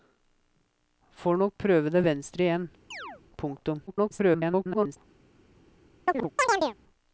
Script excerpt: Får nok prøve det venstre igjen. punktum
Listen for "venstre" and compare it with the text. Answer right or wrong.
right